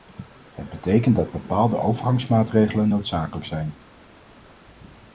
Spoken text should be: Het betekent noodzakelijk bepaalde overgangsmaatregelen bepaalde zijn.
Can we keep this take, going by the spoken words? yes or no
no